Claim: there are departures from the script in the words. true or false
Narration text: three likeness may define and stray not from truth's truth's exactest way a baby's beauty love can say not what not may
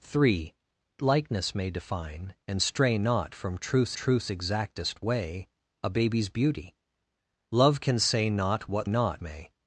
false